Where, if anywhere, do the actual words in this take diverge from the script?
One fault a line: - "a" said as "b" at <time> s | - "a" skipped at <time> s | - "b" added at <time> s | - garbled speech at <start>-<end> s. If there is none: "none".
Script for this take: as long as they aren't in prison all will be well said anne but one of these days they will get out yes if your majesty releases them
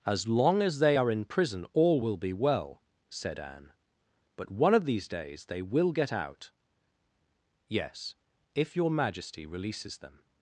- "aren't" said as "are" at 1.0 s